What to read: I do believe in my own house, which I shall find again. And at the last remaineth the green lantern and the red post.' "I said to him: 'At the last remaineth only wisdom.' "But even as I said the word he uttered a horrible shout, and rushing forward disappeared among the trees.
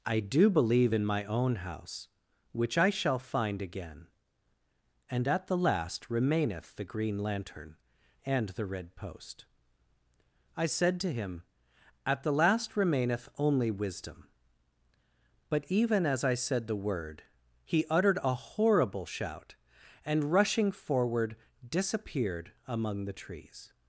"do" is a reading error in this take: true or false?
false